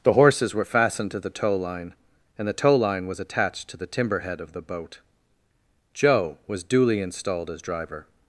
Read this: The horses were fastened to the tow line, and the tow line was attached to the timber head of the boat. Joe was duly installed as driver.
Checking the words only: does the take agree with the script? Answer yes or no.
yes